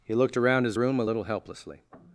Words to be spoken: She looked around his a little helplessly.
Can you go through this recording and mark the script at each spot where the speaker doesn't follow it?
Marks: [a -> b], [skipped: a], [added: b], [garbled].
[She -> He] looked around his [added: room] a little helplessly.